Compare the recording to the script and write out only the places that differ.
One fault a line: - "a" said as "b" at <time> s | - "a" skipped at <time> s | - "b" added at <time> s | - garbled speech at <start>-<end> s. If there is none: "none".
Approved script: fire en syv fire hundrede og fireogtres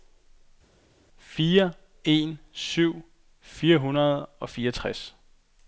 none